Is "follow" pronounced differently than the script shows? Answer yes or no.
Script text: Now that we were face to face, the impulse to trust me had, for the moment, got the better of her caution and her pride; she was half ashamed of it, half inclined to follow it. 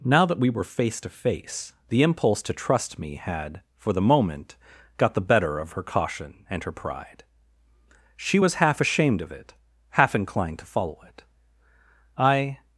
no